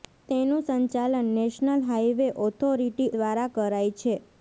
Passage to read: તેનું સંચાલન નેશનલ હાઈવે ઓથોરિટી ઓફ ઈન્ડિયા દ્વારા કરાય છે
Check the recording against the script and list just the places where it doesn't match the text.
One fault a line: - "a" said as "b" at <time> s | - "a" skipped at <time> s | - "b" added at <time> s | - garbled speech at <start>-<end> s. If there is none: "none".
- "ઓફ ઈન્ડિયા" skipped at 3.1 s